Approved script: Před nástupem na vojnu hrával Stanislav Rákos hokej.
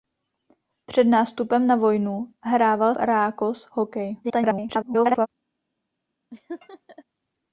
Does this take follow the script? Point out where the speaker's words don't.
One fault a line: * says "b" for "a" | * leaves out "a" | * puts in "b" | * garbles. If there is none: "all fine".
* leaves out "Stanislav"
* garbles